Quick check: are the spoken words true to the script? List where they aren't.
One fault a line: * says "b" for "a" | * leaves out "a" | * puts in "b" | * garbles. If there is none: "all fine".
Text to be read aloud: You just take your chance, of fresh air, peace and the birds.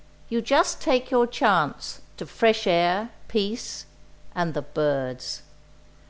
all fine